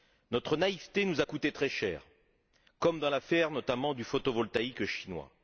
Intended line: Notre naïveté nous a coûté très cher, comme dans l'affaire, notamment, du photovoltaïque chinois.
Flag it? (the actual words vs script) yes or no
no